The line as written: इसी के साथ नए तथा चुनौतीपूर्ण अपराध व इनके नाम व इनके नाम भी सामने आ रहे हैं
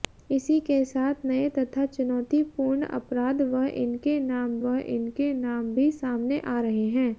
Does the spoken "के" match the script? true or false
true